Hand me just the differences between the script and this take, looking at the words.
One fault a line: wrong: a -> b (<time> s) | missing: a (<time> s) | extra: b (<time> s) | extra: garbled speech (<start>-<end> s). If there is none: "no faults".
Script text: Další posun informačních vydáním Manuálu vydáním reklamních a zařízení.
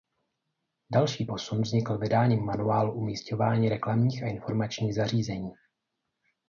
wrong: informačních -> vznikl (1.6 s)
wrong: vydáním -> umisťování (2.9 s)
extra: informačních (4.3 s)